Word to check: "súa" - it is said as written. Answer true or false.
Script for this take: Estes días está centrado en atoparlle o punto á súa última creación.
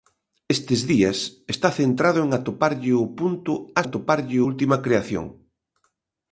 false